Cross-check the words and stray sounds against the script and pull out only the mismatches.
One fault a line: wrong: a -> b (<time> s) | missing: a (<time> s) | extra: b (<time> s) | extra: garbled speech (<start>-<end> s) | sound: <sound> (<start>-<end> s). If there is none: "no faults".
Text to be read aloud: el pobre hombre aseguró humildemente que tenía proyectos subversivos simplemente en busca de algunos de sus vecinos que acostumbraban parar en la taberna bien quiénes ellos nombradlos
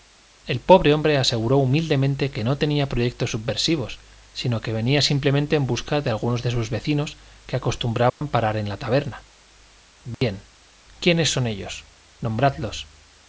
extra: no (2.4 s)
extra: sino que venía (4.3 s)
sound: dropout (8.1-8.2 s)
sound: dropout (10.1-10.2 s)
extra: son (11.3 s)